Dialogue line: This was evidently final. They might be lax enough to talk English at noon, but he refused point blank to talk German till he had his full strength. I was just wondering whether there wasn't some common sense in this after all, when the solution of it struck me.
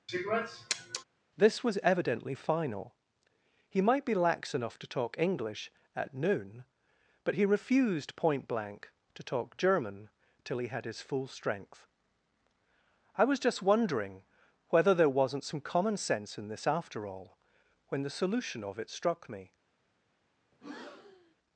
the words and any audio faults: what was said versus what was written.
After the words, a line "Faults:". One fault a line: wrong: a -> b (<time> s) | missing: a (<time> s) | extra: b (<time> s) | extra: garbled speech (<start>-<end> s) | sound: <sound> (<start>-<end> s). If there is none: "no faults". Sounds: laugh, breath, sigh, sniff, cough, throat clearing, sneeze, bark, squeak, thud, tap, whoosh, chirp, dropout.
This was evidently final. He might be lax enough to talk English at noon, but he refused point blank to talk German till he had his full strength. I was just wondering whether there wasn't some common sense in this after all, when the solution of it struck me.
Faults:
sound: sniff (0.1-1.0 s)
wrong: They -> He (3.7 s)
sound: breath (20.5-21.3 s)